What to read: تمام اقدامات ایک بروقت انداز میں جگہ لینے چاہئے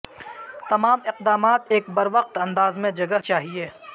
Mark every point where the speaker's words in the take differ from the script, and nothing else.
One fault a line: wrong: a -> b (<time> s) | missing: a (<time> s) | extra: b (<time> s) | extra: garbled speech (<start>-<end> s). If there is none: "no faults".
missing: لینے (3.2 s)